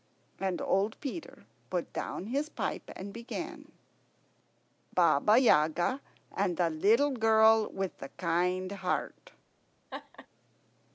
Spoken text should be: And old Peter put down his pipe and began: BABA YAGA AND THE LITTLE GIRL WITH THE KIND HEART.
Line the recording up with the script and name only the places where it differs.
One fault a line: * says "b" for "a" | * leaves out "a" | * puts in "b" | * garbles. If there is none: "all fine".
all fine